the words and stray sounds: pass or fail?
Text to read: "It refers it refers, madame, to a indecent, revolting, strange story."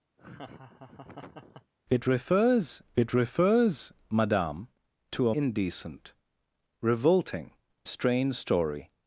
fail